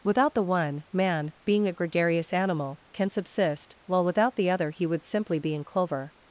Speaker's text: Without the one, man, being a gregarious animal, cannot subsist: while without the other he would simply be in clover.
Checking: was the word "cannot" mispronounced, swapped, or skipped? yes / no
yes